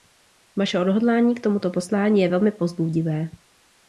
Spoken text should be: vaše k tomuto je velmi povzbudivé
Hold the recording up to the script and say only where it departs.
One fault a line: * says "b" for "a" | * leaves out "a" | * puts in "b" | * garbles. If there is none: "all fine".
* puts in "odhodlání"
* puts in "poslání"